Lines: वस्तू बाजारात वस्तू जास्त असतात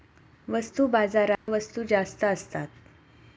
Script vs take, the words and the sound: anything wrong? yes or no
yes